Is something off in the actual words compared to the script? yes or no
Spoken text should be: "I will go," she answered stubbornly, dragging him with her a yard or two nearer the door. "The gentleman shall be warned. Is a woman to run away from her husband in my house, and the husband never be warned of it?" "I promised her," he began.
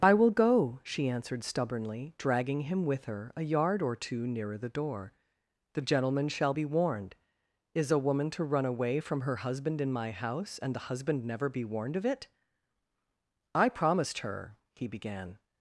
no